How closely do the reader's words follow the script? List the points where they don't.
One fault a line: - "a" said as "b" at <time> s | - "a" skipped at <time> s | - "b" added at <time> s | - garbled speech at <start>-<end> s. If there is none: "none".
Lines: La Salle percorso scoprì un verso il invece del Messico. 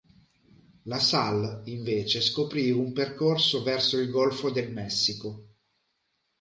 - "percorso" said as "invece" at 1.6 s
- "percorso" added at 2.9 s
- "invece" said as "golfo" at 4.1 s